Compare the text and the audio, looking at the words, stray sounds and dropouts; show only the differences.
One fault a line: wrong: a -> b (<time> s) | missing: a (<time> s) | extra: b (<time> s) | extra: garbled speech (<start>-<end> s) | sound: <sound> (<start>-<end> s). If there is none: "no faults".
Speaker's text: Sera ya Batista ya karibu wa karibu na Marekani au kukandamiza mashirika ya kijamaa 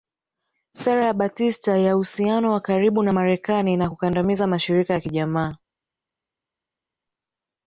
wrong: karibu -> uhusiano (2.0 s)
wrong: au -> na (3.8 s)